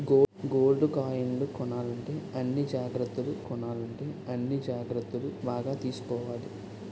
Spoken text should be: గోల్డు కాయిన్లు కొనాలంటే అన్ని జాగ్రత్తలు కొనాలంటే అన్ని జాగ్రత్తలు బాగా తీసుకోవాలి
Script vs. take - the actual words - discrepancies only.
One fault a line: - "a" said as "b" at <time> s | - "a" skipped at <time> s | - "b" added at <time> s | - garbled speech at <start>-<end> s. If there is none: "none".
none